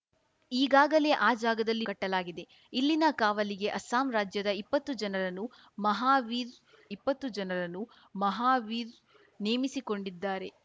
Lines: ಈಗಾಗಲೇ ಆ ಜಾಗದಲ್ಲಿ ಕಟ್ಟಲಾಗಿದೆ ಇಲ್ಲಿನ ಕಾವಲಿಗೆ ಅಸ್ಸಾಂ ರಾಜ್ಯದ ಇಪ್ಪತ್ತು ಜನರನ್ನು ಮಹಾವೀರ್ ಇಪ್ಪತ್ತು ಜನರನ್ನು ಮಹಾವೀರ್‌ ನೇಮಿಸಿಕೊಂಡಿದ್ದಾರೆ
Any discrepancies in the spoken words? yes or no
no